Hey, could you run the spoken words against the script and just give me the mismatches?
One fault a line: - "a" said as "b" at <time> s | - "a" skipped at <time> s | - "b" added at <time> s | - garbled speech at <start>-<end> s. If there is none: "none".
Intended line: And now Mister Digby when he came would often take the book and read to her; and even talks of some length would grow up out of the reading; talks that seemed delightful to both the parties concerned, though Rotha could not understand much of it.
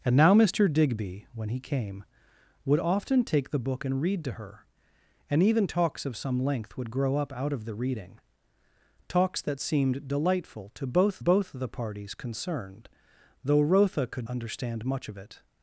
- "both" added at 11.2 s
- "not" skipped at 14.3 s